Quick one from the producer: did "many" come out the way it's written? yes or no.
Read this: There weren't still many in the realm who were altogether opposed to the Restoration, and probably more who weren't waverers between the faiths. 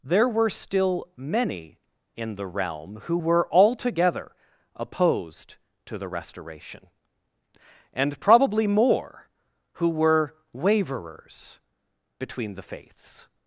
yes